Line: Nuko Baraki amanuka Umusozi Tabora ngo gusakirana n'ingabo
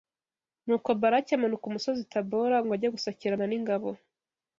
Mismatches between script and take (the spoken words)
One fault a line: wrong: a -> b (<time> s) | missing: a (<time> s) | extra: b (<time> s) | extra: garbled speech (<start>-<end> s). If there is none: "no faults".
extra: ajye (2.8 s)